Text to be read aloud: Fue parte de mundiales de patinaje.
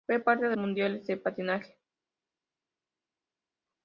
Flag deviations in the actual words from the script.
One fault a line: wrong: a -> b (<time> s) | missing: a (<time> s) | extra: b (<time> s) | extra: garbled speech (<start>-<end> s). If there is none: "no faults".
no faults